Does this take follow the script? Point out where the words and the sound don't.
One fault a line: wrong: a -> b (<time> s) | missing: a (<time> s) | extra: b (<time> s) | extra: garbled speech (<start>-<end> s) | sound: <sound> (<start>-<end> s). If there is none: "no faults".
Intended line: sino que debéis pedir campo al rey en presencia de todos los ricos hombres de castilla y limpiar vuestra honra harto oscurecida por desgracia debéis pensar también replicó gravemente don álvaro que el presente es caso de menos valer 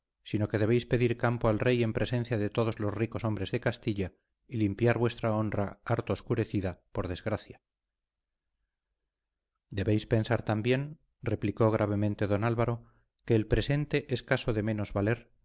no faults